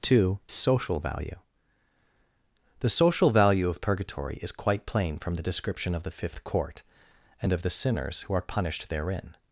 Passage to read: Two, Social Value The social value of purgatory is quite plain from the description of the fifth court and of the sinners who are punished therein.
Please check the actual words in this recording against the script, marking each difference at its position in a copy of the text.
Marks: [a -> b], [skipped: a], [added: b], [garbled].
Two, Social Value The social value of purgatory is quite plain from the description of the fifth court and of the sinners who are punished therein.